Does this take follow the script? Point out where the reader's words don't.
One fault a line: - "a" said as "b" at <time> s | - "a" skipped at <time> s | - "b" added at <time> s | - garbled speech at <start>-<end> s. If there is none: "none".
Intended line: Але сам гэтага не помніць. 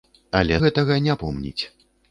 - "сам" skipped at 0.6 s